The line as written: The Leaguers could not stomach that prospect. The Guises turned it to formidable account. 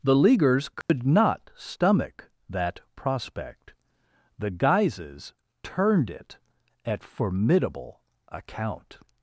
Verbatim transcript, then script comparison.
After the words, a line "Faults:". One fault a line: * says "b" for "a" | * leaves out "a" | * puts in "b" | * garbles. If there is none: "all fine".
The Leaguers could not stomach that prospect. The Guises turned it at formidable account.
Faults:
* says "at" for "to"